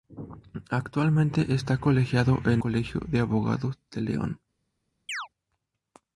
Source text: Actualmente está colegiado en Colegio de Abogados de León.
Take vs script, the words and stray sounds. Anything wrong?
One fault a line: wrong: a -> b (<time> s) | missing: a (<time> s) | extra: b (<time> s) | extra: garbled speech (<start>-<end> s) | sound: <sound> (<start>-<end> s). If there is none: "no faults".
sound: chirp (5.1-5.3 s)